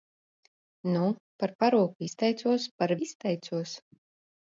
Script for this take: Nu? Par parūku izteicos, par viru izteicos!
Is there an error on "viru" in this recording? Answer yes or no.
yes